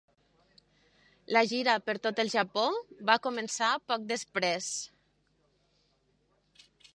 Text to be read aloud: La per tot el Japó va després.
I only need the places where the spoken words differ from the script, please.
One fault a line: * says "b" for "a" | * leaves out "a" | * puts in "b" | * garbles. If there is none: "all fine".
* puts in "gira"
* puts in "començar poc"